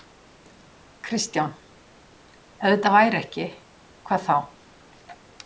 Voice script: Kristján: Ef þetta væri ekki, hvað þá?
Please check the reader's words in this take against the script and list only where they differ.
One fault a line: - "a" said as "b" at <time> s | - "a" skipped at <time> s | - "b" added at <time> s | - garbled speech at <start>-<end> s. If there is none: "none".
none